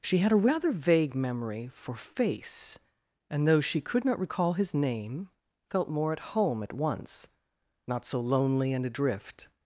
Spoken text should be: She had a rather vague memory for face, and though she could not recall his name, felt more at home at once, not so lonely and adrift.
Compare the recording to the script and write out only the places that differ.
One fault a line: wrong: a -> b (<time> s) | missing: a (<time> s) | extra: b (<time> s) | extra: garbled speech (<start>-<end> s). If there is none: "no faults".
no faults